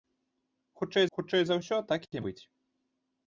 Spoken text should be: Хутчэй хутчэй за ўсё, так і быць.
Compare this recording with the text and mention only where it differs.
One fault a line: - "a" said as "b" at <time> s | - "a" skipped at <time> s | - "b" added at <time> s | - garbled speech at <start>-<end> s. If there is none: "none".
none